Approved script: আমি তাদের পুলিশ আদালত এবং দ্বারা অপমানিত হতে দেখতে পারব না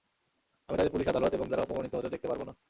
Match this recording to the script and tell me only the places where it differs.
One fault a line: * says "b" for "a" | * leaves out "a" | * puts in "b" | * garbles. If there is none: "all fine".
all fine